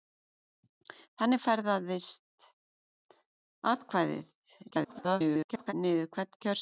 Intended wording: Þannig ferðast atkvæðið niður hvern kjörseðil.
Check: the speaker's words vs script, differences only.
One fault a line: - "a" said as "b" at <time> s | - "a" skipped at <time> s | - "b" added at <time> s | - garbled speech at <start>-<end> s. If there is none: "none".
- garbled speech at 4.7-5.7 s